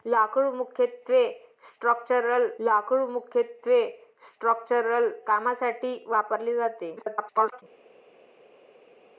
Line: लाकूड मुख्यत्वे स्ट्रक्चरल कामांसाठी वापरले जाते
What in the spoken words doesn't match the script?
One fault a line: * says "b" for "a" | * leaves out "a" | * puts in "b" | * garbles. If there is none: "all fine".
* puts in "लाकूड मुख्यत्वे स्ट्रक्चरल"
* garbles